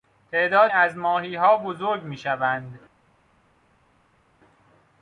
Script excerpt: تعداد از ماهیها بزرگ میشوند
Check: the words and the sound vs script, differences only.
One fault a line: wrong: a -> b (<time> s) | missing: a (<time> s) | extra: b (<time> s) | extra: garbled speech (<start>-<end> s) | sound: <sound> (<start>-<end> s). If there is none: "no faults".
no faults